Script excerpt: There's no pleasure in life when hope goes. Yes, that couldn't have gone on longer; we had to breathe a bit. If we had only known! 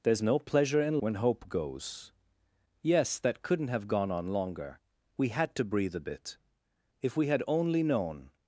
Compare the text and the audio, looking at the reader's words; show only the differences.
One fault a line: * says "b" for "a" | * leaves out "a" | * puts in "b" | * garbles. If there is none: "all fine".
* leaves out "life"